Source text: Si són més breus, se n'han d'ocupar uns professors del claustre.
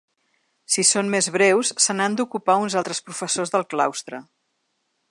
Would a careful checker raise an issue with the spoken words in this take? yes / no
yes